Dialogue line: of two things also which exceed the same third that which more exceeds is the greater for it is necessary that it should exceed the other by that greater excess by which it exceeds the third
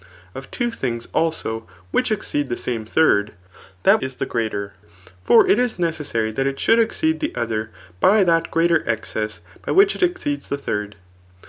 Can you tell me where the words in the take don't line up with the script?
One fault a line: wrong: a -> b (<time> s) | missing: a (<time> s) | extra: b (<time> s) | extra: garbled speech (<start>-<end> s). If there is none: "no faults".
missing: which more exceeds (4.0 s)